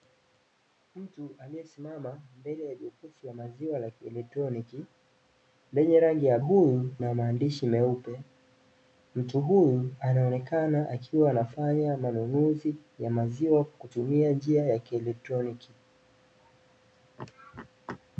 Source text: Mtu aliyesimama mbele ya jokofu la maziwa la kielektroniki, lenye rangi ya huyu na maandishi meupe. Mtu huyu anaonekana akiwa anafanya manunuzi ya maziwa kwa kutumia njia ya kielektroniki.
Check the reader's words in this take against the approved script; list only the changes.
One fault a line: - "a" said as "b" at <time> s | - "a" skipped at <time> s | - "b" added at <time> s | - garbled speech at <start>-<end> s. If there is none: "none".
none